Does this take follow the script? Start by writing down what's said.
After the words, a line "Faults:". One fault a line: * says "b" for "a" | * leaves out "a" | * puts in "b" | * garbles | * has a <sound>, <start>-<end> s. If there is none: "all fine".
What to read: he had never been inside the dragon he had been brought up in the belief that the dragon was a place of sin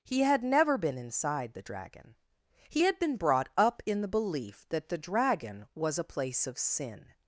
he had never been inside the dragon he had been brought up in the belief that the dragon was a place of sin
Faults:
all fine